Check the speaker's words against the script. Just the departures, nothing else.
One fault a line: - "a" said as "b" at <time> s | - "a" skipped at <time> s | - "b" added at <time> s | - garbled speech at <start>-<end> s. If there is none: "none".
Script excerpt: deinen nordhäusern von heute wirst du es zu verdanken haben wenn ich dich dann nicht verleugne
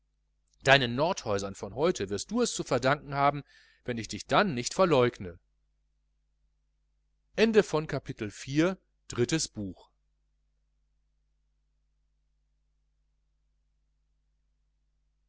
none